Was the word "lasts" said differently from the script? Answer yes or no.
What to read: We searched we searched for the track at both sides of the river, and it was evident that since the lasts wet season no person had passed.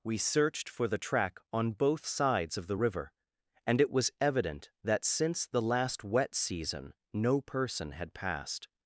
yes